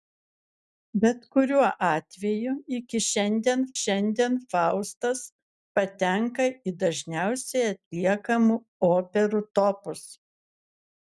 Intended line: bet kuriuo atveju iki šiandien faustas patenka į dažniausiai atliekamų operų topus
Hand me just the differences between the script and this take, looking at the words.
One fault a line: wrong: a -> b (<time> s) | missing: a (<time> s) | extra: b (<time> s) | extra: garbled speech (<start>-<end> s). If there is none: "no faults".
extra: šiandien (3.8 s)